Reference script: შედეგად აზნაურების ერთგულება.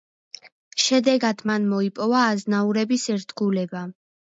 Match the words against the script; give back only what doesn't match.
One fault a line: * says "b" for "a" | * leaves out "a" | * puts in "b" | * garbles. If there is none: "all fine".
* puts in "მან მოიპოვა"